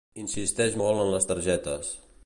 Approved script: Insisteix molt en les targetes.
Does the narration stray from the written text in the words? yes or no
no